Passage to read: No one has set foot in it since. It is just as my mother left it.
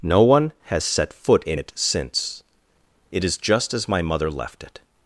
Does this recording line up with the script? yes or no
yes